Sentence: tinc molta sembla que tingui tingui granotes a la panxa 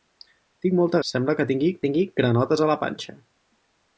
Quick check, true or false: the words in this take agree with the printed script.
true